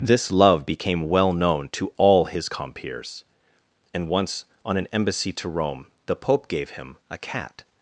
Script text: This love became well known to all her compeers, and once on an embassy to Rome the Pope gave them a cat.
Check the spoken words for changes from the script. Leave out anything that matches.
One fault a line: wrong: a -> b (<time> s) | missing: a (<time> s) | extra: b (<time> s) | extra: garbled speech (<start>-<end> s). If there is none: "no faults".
wrong: her -> his (2.2 s)
wrong: them -> him (6.7 s)